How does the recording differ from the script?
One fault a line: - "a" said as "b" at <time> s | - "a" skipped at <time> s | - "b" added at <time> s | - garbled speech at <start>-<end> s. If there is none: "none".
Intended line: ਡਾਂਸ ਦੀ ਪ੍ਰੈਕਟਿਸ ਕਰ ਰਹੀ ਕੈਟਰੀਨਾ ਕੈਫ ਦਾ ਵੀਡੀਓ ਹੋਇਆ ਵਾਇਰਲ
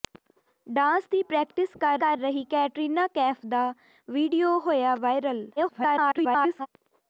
- "ਕਰ" added at 2.0 s
- garbled speech at 5.6-6.7 s